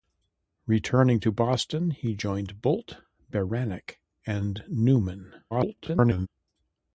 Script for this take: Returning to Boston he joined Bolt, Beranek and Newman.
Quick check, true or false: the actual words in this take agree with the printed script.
false